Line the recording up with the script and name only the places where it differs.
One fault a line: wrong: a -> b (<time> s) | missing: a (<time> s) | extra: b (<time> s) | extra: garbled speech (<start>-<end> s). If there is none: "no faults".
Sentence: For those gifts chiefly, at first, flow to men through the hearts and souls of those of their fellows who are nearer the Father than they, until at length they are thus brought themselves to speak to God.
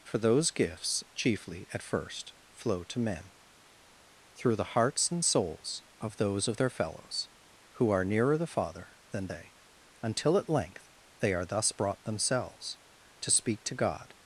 no faults